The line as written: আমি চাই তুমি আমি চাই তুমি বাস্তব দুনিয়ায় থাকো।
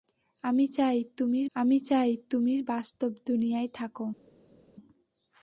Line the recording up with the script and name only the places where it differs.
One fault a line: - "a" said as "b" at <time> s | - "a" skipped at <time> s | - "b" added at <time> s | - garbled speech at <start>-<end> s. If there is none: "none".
none